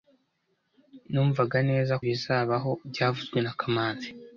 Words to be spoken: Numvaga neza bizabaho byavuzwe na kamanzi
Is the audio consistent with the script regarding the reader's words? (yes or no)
yes